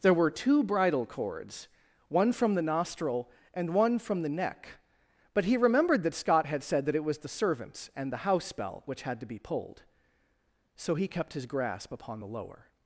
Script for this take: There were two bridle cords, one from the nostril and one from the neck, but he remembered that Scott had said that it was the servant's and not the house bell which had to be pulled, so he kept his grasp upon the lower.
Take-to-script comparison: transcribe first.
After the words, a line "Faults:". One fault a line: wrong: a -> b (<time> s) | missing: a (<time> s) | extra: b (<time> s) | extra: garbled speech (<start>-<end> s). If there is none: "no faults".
There were two bridle cords, one from the nostril and one from the neck, but he remembered that Scott had said that it was the servant's and the house bell which had to be pulled, so he kept his grasp upon the lower.
Faults:
missing: not (8.1 s)